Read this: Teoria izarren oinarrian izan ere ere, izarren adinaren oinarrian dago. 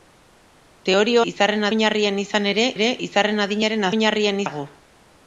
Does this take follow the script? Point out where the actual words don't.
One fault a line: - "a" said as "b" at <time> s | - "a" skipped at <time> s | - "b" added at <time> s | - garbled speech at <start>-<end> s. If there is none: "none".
none